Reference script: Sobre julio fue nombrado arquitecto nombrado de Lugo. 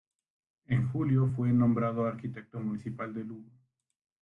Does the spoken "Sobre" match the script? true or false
false